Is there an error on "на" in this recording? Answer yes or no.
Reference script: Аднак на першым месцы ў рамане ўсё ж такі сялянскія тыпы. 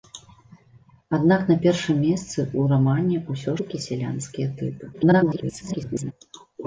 no